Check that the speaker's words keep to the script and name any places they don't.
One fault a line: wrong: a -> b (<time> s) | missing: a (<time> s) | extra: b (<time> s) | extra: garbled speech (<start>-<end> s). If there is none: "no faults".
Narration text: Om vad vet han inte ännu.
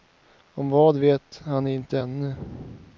no faults